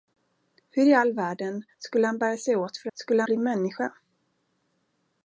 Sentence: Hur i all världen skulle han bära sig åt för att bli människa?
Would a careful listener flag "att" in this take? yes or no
yes